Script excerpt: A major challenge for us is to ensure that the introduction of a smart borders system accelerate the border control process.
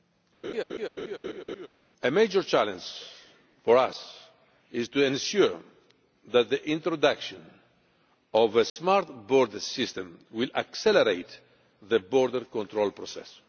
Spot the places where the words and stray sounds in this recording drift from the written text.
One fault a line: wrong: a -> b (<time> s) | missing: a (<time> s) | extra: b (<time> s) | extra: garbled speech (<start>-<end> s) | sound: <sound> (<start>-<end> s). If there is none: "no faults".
sound: laugh (0.4-1.7 s)
sound: dropout (8.7-8.8 s)
extra: will (10.3 s)